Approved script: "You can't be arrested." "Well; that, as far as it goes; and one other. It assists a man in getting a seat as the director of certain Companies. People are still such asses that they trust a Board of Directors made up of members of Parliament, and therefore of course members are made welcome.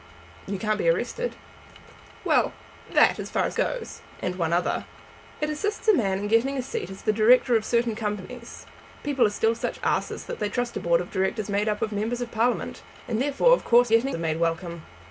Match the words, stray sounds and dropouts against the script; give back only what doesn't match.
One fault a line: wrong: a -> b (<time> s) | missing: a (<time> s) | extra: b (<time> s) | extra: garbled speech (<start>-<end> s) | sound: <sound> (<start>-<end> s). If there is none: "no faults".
missing: it (3.5 s)
wrong: members -> getting (13.9 s)